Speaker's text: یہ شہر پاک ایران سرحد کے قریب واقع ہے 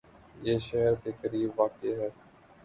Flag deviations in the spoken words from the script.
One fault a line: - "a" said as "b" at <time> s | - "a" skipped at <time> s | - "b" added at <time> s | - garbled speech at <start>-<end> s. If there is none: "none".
- "پاک ایران سرحد" skipped at 0.9 s